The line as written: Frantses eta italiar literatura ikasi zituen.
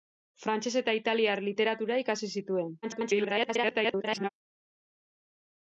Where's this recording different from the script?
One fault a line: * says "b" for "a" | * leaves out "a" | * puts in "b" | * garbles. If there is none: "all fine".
* garbles